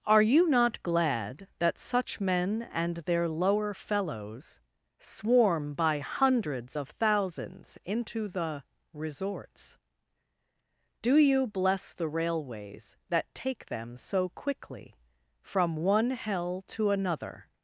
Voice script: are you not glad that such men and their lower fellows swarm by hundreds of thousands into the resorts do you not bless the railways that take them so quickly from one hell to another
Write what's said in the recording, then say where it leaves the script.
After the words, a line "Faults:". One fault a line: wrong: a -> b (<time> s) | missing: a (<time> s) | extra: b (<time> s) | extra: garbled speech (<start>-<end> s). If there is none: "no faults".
are you not glad that such men and their lower fellows swarm by hundreds of thousands into the resorts do you bless the railways that take them so quickly from one hell to another
Faults:
missing: not (11.5 s)